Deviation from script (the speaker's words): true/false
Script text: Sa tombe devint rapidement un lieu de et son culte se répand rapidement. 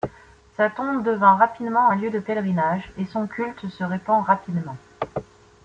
true